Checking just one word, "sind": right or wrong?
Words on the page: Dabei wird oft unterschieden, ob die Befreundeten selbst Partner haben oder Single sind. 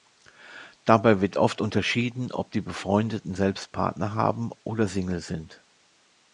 right